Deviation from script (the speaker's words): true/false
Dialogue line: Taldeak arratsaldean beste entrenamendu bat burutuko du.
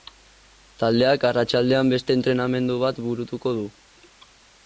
false